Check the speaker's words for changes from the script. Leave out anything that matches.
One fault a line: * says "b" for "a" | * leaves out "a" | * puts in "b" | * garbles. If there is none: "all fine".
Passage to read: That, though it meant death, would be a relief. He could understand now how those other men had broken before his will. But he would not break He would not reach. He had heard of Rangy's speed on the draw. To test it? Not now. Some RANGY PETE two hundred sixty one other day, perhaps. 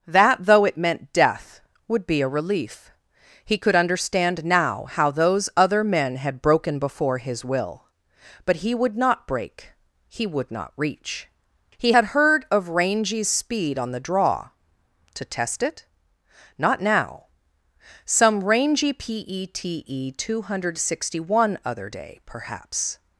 all fine